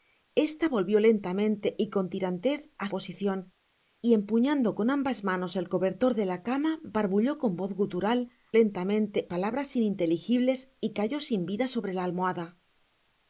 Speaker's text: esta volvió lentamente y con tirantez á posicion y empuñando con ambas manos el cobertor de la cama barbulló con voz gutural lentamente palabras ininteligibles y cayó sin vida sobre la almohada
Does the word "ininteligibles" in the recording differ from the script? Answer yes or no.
no